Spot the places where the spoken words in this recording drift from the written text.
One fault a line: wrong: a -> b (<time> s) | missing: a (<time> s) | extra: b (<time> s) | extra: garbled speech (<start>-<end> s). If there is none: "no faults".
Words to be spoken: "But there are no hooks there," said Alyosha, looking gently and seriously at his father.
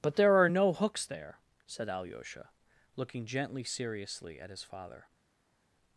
missing: and (3.6 s)